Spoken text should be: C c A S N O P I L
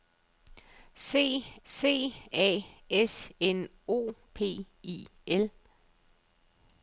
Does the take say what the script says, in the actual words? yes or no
yes